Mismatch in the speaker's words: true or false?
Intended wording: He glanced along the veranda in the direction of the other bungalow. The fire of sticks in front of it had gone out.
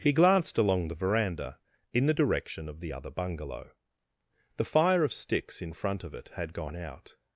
false